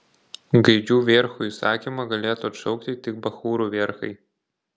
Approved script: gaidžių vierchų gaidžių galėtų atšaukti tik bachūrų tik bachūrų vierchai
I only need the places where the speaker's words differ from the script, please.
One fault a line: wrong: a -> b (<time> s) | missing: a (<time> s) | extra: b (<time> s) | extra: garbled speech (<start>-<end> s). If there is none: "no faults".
wrong: gaidžių -> įsakymą (1.5 s)
missing: tik bachūrų (3.7 s)